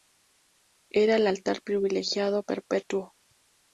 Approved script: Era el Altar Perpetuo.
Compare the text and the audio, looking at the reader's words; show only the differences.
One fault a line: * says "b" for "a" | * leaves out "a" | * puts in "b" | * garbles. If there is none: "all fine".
* puts in "Privilegiado"